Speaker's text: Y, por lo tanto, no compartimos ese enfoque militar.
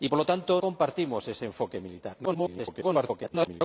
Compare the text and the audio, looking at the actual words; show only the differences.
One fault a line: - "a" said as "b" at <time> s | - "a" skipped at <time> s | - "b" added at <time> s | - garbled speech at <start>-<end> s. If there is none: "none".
- "no" skipped at 0.6 s
- garbled speech at 2.2-3.6 s